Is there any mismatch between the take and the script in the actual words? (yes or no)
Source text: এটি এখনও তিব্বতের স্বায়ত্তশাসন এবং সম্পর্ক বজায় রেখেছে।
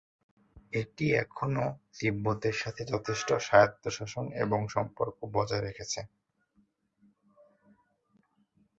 yes